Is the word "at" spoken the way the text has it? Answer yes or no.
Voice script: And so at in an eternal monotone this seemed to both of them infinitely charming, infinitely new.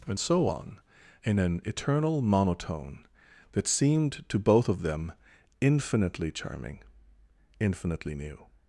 no